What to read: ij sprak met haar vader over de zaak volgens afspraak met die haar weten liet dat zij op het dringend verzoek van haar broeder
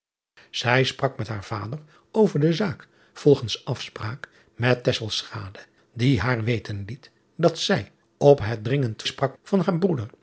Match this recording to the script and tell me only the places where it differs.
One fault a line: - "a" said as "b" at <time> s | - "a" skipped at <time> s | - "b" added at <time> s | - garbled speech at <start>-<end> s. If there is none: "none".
- "verzoek" said as "sprak" at 9.0 s